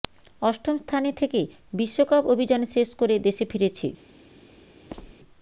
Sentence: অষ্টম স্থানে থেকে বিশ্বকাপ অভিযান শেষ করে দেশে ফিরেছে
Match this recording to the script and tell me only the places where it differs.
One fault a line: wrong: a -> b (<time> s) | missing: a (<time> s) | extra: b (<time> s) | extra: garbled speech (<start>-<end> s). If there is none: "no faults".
no faults